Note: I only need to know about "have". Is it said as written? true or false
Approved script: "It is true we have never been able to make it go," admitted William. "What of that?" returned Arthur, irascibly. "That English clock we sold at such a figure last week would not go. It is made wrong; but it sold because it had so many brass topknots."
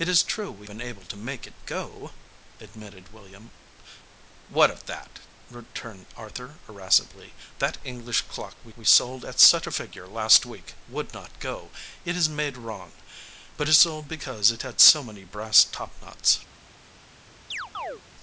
false